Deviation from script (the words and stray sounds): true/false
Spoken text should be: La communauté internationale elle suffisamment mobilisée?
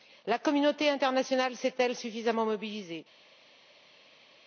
true